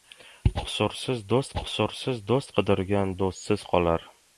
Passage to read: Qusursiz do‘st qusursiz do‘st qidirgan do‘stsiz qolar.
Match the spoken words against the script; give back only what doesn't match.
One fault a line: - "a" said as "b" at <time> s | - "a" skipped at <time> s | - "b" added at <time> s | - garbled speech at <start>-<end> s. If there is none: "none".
none